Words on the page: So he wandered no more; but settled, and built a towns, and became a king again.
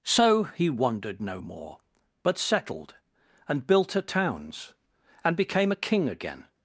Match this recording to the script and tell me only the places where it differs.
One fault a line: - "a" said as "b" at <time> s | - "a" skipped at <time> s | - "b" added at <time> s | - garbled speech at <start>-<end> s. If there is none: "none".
none